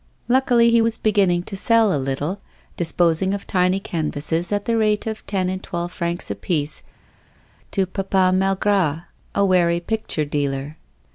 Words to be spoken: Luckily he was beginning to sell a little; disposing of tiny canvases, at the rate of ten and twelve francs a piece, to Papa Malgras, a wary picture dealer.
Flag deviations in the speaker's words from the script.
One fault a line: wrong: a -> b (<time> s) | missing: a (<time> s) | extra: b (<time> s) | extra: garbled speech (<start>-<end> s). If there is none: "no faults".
no faults